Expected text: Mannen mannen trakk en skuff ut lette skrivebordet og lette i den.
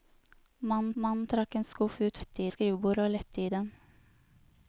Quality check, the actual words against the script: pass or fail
pass